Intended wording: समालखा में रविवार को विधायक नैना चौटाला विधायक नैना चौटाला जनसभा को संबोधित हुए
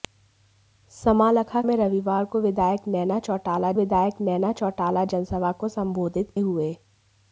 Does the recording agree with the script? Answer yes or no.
yes